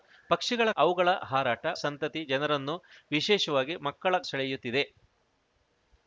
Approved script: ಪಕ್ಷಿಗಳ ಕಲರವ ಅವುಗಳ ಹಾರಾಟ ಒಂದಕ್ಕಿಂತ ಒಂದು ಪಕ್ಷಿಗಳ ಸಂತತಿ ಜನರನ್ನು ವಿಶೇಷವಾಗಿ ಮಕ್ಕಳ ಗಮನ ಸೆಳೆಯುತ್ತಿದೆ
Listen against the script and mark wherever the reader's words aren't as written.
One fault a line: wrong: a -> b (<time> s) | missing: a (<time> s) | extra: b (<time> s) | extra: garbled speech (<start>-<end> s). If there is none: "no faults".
missing: ಕಲರವ (0.7 s)
missing: ಒಂದಕ್ಕಿಂತ ಒಂದು ಪಕ್ಷಿಗಳ (1.7 s)
missing: ಗಮನ (4.2 s)